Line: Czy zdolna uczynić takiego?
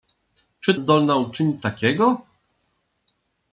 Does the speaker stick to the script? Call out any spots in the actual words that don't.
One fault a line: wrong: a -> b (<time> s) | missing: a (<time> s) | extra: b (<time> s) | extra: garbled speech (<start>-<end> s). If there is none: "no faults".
no faults